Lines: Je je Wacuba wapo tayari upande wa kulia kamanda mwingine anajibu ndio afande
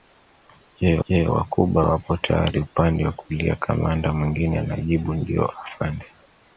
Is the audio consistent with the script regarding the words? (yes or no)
yes